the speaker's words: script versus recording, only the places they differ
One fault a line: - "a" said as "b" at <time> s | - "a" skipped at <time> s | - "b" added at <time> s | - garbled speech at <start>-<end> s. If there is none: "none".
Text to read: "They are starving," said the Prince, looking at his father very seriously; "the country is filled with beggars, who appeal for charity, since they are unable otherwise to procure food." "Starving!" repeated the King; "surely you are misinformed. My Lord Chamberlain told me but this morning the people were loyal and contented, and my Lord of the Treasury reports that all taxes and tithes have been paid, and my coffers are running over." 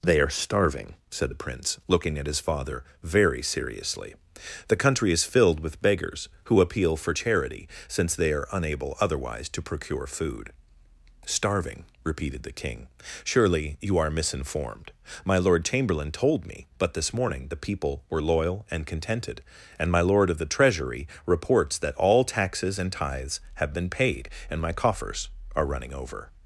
none